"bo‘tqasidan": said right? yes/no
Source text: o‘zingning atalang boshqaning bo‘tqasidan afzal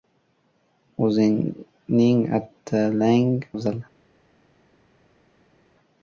no